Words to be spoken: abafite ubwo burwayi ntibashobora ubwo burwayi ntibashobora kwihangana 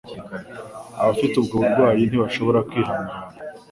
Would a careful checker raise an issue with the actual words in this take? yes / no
yes